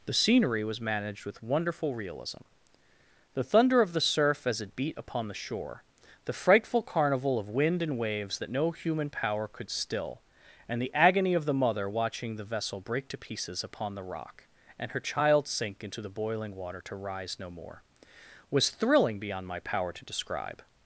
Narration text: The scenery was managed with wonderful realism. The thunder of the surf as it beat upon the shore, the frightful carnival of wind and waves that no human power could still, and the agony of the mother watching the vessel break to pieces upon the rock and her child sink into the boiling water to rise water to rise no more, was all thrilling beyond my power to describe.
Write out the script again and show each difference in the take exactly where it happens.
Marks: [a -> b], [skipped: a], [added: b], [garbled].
The scenery was managed with wonderful realism. The thunder of the surf as it beat upon the shore, the frightful carnival of wind and waves that no human power could still, and the agony of the mother watching the vessel break to pieces upon the rock and her child sink into the boiling water to rise [skipped: water to rise] no more, was [skipped: all] thrilling beyond my power to describe.